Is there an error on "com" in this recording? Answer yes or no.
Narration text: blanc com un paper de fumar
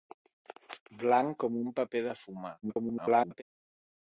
no